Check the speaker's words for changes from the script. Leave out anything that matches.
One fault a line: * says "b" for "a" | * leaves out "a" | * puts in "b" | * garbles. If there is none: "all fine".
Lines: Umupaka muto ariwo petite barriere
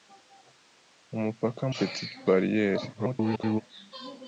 * leaves out "muto ariwo"
* garbles